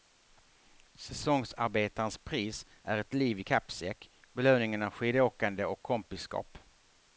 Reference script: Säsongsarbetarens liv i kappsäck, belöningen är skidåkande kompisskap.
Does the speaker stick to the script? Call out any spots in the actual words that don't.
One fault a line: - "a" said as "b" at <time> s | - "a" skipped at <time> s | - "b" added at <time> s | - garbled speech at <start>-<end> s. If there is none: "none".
- "pris är ett" added at 2.2 s
- "och" added at 5.6 s